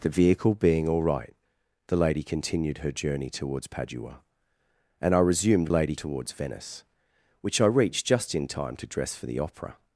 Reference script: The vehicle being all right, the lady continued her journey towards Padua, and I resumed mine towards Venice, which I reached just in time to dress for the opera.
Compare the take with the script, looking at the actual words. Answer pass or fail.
fail